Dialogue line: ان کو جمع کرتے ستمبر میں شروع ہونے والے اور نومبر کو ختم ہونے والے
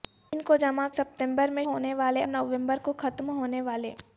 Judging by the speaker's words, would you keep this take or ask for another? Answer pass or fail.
fail